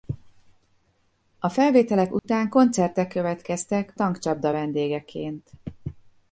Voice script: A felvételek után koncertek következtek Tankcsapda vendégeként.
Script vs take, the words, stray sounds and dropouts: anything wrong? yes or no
yes